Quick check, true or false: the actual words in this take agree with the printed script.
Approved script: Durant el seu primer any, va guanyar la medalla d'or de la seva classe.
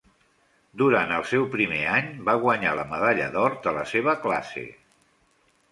true